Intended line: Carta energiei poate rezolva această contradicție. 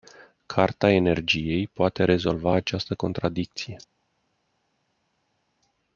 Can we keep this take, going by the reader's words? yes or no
yes